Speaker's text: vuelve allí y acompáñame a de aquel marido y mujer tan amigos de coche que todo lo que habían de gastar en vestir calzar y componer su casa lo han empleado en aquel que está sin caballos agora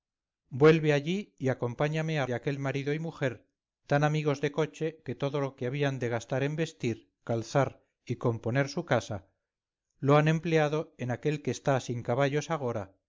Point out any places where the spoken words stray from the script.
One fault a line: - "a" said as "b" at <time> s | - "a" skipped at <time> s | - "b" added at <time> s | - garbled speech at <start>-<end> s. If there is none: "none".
none